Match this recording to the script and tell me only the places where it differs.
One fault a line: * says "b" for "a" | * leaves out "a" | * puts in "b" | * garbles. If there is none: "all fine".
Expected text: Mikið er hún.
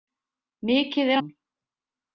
all fine